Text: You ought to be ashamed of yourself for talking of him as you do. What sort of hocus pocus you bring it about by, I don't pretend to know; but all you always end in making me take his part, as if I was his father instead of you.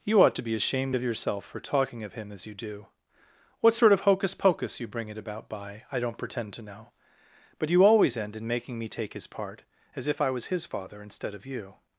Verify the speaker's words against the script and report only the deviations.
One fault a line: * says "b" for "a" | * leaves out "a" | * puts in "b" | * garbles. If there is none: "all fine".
* leaves out "all"